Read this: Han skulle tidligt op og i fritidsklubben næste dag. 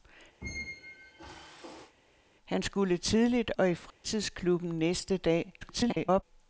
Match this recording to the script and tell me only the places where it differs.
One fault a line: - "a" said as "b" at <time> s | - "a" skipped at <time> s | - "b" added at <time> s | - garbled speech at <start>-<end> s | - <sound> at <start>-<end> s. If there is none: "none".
- squeak at 0.4-1.9 s
- "op" skipped at 3.5 s
- dropout at 3.9-4.0 s
- garbled speech at 5.6-6.2 s